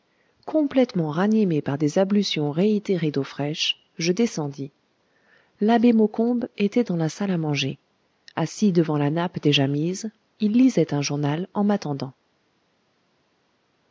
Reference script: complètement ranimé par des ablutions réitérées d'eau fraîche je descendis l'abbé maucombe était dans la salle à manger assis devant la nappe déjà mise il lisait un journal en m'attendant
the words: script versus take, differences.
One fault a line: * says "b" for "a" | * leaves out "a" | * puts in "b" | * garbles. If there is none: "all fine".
all fine